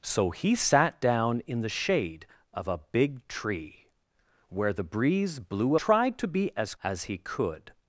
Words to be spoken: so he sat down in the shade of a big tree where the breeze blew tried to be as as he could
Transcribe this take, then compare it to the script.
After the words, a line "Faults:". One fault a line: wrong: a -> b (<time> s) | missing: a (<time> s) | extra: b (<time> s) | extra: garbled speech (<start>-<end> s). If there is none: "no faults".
so he sat down in the shade of a big tree where the breeze blew tried to be as as he could
Faults:
no faults